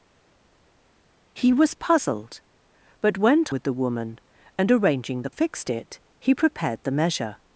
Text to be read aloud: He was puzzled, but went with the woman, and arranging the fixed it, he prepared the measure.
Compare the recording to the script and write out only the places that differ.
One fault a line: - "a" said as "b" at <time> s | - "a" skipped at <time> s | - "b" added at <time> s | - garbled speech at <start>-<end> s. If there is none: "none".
none